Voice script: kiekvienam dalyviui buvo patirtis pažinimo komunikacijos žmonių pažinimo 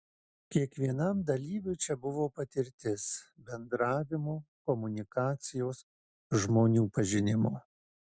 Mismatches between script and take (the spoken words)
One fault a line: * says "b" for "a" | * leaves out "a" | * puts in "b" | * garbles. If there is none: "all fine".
* puts in "čia"
* says "bendravimo" for "pažinimo"